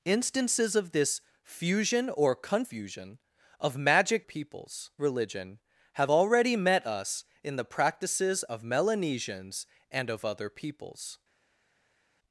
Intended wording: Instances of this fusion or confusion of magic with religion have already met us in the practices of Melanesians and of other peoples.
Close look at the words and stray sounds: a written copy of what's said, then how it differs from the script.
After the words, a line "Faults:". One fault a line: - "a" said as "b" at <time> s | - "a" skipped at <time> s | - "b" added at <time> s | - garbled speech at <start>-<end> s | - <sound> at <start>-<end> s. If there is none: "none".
Instances of this fusion or confusion of magic peoples religion have already met us in the practices of Melanesians and of other peoples.
Faults:
- "with" said as "peoples" at 4.2 s